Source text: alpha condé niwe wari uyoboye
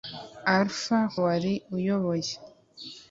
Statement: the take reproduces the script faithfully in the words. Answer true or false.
false